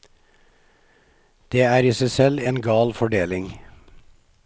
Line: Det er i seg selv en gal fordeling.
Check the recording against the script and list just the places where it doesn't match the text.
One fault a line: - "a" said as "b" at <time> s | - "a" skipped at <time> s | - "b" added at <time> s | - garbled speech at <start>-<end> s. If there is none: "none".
none